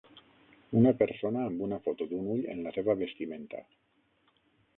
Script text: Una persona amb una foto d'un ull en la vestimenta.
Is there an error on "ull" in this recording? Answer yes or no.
no